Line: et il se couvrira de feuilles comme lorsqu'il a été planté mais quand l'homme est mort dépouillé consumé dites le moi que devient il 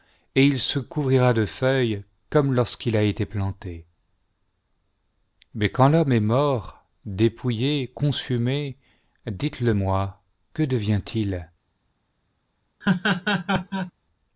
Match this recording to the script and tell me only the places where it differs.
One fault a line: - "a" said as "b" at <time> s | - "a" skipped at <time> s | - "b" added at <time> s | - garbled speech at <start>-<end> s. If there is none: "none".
none